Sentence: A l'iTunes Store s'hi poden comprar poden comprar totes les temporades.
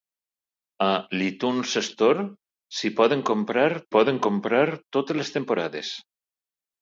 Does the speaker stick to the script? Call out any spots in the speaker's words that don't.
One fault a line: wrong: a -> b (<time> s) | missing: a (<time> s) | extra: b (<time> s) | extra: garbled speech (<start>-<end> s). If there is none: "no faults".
no faults